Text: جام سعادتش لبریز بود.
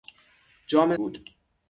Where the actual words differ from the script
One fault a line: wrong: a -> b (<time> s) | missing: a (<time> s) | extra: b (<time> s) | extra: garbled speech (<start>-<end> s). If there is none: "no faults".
missing: سعادتش لبریز (0.9 s)